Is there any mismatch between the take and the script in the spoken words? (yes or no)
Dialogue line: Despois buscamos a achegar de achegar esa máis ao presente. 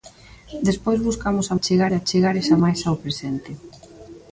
no